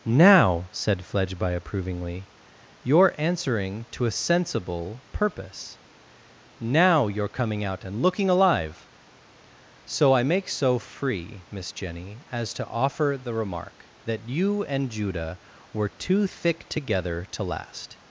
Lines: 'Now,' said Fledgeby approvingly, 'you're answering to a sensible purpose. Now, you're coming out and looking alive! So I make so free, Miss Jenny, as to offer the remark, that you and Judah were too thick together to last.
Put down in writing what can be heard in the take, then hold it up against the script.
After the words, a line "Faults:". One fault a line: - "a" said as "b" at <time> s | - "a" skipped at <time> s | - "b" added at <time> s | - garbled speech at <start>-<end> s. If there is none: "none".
'Now,' said Fledgeby approvingly, 'you're answering to a sensible purpose. Now, you're coming out and looking alive! So I make so free, Miss Jenny, as to offer the remark, that you and Judah were too thick together to last.
Faults:
none